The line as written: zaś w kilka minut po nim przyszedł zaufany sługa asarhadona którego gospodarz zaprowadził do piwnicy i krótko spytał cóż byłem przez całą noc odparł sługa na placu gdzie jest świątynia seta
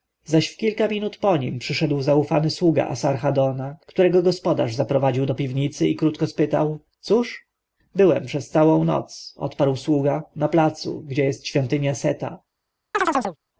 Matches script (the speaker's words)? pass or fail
pass